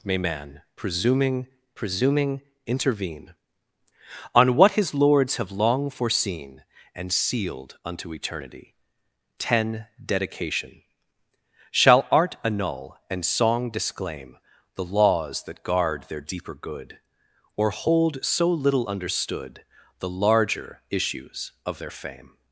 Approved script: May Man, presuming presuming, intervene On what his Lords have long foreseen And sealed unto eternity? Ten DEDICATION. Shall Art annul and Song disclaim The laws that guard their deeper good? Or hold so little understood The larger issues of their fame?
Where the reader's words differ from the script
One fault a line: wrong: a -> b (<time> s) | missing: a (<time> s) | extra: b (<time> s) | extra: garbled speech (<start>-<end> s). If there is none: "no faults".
no faults